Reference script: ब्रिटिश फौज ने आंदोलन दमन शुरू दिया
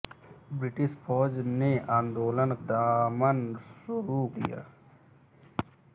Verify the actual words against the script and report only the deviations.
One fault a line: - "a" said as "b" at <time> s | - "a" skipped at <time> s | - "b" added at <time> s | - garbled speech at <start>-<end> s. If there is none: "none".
none